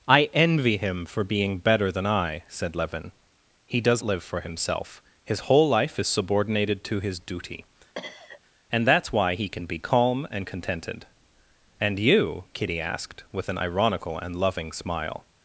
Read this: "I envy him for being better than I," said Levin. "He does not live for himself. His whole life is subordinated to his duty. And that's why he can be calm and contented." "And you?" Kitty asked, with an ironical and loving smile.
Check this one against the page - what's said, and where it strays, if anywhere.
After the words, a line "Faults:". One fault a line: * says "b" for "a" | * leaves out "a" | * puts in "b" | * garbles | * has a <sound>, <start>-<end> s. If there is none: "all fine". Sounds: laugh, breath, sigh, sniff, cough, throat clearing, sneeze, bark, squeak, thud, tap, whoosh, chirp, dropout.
"I envy him for being better than I," said Levin. "He does live for himself. His whole life is subordinated to his duty. And that's why he can be calm and contented." "And you?" Kitty asked, with an ironical and loving smile.
Faults:
* leaves out "not"
* has a cough, 8.0-8.4 s